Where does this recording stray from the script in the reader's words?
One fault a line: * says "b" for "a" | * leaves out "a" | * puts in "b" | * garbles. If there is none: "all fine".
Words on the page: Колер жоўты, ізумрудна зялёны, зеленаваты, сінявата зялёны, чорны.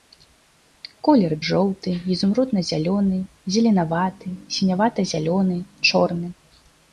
all fine